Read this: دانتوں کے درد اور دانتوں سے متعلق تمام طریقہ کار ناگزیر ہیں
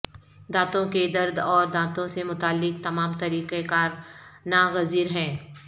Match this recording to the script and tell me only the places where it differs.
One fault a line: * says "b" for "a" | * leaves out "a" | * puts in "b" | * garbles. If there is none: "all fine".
all fine